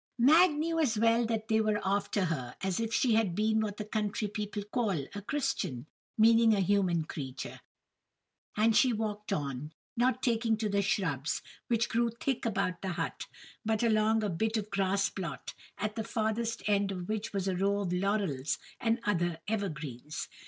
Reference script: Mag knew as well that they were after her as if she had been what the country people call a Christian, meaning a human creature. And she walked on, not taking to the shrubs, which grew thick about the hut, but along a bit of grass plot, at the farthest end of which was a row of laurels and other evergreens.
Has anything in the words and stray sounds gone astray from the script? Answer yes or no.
no